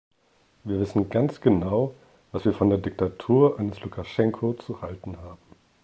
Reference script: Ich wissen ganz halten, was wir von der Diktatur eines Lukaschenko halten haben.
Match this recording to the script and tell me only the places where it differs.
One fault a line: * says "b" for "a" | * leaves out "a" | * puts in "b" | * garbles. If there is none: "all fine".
* says "Wir" for "Ich"
* says "genau" for "halten"
* puts in "zu"